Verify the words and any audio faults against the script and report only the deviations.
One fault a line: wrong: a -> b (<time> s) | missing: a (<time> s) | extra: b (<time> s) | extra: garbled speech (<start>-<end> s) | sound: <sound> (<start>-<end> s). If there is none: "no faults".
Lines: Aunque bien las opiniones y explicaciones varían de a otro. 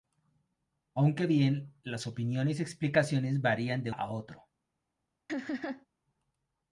sound: laugh (5.3-5.9 s)